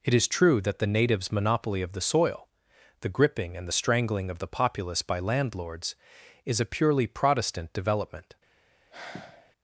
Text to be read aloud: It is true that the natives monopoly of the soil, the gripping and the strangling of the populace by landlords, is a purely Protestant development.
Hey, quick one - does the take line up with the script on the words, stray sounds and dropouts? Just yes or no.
no